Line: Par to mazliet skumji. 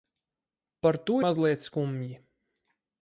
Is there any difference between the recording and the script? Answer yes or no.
no